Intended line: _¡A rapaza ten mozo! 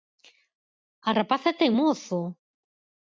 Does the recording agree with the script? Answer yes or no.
yes